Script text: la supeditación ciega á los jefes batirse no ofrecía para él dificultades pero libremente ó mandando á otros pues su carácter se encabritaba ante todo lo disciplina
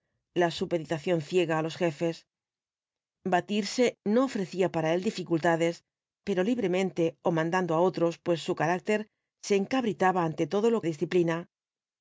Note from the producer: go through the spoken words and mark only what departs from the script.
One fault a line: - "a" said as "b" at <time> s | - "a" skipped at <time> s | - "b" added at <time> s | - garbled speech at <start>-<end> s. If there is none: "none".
none